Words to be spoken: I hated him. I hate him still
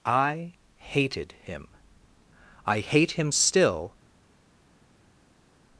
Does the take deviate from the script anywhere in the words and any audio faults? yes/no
no